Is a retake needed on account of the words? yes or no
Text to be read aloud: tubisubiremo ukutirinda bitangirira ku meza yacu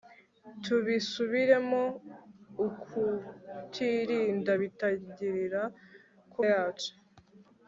yes